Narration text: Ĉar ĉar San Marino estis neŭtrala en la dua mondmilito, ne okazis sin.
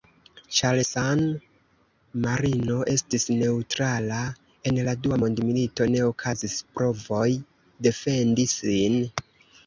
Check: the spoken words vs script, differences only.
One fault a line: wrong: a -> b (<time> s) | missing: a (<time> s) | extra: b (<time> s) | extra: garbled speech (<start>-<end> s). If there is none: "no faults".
missing: ĉar (0.8 s)
extra: provoj defendi (6.7 s)